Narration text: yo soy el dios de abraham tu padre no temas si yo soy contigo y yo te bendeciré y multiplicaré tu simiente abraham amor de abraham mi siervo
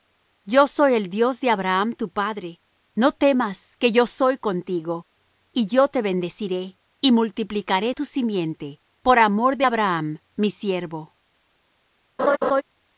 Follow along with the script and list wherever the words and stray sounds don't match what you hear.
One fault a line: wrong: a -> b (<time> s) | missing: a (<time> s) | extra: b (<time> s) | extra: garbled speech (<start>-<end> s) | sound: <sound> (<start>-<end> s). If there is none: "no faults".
wrong: si -> que (3.8 s)
wrong: abraham -> por (9.0 s)
sound: laugh (12.2-12.6 s)